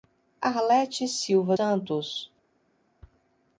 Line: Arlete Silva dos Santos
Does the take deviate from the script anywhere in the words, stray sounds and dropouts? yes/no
yes